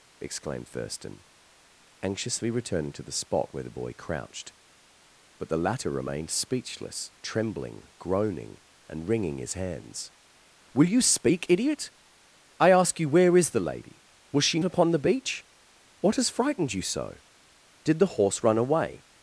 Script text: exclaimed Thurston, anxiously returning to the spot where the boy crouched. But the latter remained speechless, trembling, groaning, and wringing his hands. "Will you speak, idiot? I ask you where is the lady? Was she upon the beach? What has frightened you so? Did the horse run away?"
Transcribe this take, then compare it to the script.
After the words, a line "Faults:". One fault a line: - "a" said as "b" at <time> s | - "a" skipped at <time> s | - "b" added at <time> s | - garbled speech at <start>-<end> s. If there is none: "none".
exclaimed Thurston, anxiously returning to the spot where the boy crouched. But the latter remained speechless, trembling, groaning, and wringing his hands. "Will you speak, idiot? I ask you where is the lady? Was she upon the beach? What has frightened you so? Did the horse run away?"
Faults:
none